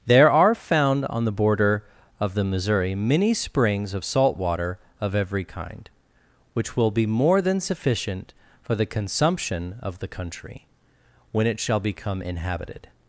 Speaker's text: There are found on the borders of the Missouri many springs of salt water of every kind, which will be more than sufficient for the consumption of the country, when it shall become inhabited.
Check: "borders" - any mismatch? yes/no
yes